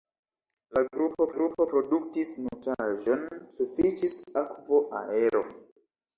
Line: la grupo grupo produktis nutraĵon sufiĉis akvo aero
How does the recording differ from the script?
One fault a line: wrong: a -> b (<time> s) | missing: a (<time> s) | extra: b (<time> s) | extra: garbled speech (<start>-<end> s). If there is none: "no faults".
no faults